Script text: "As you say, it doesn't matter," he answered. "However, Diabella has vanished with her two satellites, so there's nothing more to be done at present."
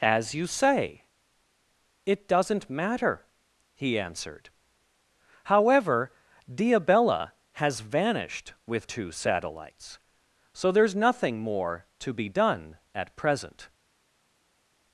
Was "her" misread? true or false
true